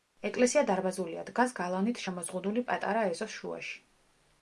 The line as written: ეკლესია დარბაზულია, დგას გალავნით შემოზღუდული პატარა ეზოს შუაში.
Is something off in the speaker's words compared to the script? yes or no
no